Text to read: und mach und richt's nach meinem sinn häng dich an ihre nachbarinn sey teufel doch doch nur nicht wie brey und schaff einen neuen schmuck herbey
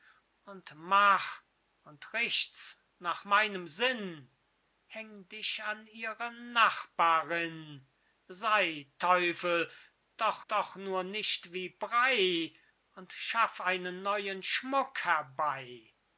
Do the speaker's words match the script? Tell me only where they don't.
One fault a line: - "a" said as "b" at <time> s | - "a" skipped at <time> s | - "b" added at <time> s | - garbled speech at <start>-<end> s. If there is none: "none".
none